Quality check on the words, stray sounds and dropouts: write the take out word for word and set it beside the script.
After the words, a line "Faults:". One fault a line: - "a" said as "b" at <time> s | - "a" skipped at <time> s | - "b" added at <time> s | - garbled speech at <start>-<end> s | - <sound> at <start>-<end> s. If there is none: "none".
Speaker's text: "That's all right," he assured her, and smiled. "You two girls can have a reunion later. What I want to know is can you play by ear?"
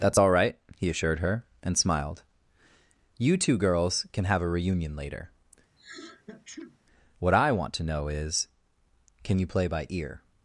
"That's all right," he assured her, and smiled. "You two girls can have a reunion later. What I want to know is can you play by ear?"
Faults:
- sneeze at 5.8-6.8 s